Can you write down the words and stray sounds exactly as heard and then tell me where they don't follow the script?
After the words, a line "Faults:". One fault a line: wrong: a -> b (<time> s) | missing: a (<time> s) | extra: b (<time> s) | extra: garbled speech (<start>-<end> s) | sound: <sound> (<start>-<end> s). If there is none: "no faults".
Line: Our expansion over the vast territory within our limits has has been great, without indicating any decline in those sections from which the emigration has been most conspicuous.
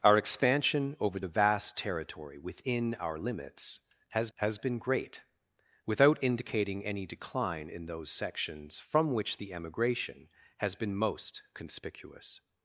Our expansion over the vast territory within our limits has has been great, without indicating any decline in those sections from which the emigration has been most conspicuous.
Faults:
no faults